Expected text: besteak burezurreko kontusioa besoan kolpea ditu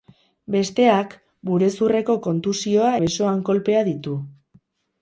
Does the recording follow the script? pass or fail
pass